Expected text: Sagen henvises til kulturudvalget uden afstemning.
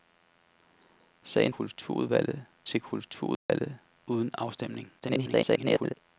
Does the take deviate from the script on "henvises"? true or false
true